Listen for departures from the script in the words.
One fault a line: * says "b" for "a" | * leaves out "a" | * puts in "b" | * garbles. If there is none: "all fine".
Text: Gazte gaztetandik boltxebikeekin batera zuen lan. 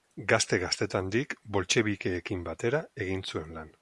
* puts in "egin"